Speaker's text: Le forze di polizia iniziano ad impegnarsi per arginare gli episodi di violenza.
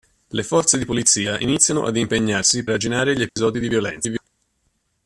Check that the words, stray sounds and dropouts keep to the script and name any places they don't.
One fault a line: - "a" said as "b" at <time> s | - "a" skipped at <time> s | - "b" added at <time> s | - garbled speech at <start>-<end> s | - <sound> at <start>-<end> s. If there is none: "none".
- "per" skipped at 2.6 s
- dropout at 3.3-3.4 s